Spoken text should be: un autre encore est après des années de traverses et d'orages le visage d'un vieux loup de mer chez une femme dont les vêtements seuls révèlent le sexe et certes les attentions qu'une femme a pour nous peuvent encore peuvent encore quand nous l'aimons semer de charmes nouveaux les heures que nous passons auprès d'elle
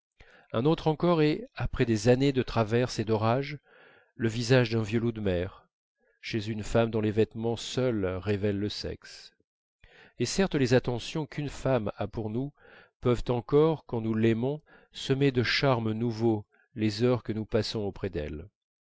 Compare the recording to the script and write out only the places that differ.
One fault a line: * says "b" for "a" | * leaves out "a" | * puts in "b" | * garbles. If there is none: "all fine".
* leaves out "peuvent encore"